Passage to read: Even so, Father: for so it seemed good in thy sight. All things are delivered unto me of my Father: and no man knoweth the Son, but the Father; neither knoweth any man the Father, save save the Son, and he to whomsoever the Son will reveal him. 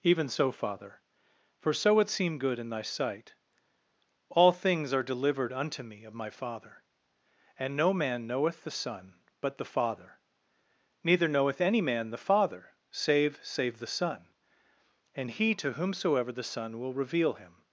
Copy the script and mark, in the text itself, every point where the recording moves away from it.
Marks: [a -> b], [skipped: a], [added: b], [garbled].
Even so, Father: for so it seemed good in thy sight. All things are delivered unto me of my Father: and no man knoweth the Son, but the Father; neither knoweth any man the Father, save save the Son, and he to whomsoever the Son will reveal him.